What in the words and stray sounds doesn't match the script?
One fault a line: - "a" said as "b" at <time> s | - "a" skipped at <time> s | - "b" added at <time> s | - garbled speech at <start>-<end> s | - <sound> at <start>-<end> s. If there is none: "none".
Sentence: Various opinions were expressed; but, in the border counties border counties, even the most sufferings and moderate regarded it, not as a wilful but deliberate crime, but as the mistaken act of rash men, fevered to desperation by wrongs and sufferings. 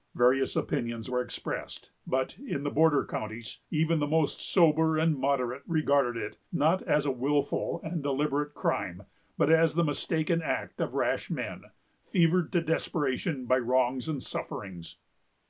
- "border counties" skipped at 3.6 s
- "sufferings" said as "sober" at 4.4 s
- "but" said as "and" at 7.8 s